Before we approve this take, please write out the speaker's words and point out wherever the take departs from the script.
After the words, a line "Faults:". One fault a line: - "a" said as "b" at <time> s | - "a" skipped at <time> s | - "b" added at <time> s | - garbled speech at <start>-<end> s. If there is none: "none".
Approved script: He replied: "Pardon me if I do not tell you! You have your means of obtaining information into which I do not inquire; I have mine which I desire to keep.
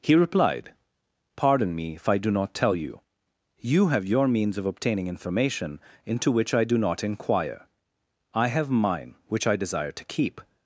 He replied: "Pardon me if I do not tell you! You have your means of obtaining information into which I do not inquire; I have mine which I desire to keep.
Faults:
none